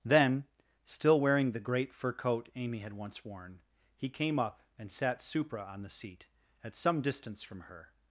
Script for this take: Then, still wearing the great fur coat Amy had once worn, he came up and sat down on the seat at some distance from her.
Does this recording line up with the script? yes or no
no